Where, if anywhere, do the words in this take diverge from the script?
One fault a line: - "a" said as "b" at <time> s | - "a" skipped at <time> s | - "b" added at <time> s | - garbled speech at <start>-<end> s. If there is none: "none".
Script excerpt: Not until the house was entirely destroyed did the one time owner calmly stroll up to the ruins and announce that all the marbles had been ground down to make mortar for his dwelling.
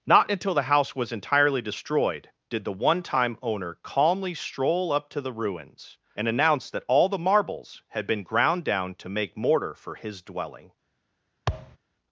none